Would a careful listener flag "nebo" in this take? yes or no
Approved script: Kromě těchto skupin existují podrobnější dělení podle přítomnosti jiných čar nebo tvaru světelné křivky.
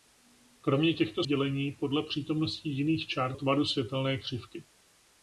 yes